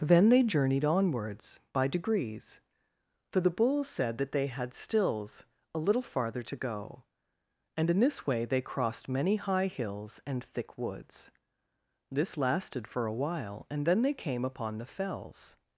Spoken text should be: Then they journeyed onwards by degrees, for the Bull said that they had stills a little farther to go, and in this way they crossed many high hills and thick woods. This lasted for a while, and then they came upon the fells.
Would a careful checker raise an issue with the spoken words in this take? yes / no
no